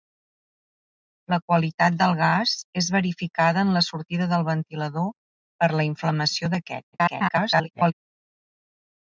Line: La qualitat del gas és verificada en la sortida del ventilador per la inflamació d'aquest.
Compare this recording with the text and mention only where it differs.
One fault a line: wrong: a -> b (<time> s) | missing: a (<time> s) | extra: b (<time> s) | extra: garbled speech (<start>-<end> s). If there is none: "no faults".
extra: garbled speech (6.9-7.9 s)